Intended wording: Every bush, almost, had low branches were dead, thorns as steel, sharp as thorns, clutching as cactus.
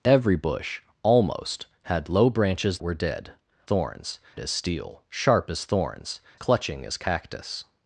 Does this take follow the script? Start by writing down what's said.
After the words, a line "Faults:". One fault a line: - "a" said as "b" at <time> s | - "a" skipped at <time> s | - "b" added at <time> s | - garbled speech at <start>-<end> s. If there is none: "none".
Every bush, almost, had low branches were dead, thorns as steel, sharp as thorns, clutching as cactus.
Faults:
none